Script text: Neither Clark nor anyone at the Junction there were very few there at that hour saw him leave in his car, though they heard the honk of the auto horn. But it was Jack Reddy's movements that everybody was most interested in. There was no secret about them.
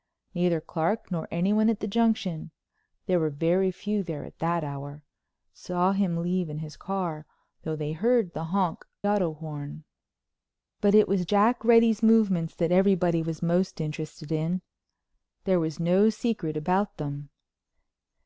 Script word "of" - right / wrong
wrong